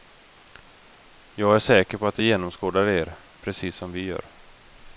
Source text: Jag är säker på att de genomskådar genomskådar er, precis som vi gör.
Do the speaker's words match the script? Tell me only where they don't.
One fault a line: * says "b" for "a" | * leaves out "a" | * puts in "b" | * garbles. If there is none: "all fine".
* leaves out "genomskådar"